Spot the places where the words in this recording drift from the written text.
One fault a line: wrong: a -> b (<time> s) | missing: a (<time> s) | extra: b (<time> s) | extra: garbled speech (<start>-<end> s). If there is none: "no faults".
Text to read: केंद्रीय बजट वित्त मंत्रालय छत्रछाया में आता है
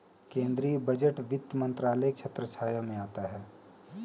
no faults